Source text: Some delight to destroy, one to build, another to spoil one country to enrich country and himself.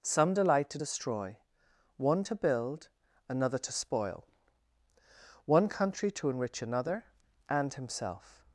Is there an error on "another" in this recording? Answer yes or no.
no